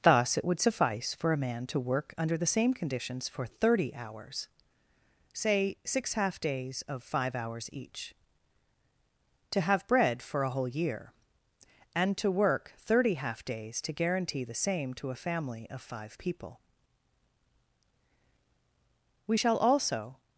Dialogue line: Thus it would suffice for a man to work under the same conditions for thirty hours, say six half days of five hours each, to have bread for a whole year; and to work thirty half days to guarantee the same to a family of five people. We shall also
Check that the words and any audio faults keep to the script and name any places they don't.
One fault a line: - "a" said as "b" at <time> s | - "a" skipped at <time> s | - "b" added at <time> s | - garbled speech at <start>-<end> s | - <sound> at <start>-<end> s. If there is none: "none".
none